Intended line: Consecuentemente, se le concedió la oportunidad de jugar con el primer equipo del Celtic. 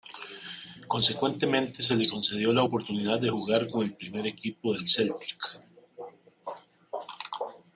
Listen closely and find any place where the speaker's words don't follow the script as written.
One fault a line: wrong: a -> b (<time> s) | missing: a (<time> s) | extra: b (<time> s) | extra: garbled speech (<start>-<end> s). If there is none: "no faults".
no faults